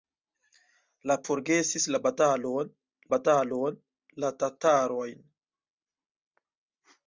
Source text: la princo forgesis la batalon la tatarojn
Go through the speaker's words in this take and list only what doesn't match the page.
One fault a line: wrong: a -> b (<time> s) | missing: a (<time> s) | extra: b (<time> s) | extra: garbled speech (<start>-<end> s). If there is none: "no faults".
missing: princo (1.2 s)
extra: batalon (3.2 s)